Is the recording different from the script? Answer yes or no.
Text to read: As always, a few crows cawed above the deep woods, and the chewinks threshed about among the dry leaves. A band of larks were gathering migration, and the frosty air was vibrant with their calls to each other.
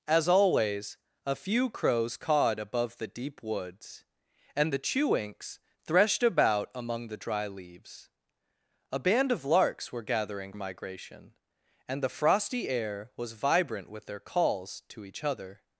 no